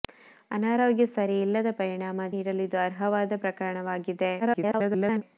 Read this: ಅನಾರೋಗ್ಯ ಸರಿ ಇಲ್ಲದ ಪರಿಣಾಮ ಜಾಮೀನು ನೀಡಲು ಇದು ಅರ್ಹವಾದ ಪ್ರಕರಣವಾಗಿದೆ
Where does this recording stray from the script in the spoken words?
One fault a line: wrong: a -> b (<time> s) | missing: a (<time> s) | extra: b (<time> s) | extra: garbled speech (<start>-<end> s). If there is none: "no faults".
missing: ಜಾಮೀನು (2.3 s)
extra: garbled speech (4.4-5.2 s)